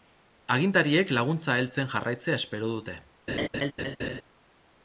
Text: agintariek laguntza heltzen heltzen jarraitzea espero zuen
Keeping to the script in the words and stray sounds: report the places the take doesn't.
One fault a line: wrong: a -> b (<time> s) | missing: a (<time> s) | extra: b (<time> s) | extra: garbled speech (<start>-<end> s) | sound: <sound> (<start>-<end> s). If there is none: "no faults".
missing: heltzen (1.9 s)
wrong: zuen -> dute (2.8 s)
sound: laugh (3.3-4.2 s)